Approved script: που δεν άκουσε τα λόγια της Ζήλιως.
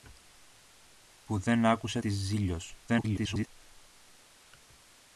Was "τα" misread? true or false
true